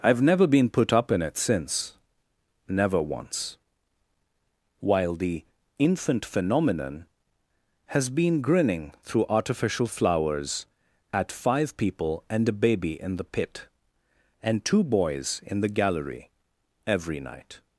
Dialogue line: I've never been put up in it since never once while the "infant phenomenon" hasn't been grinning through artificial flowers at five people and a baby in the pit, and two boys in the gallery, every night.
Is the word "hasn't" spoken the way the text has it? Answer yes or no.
no